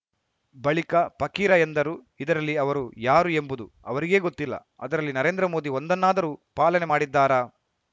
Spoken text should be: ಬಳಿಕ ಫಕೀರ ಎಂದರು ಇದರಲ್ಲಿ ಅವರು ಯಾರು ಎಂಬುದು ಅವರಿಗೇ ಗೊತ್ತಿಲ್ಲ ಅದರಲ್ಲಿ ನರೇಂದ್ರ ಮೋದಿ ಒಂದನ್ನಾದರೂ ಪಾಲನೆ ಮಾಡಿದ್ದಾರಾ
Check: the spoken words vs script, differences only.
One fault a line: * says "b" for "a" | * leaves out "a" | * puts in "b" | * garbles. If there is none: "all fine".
all fine